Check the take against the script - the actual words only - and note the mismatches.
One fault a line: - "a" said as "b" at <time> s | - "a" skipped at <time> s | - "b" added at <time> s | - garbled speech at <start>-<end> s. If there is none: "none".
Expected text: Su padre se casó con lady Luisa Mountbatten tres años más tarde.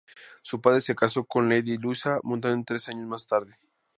none